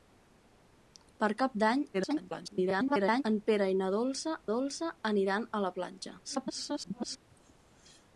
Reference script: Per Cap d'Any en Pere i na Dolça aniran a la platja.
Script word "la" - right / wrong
right